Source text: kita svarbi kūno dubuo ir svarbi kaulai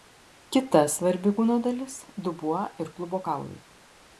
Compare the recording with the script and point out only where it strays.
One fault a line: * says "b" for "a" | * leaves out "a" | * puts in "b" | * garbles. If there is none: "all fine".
* puts in "dalis"
* says "klubo" for "svarbi"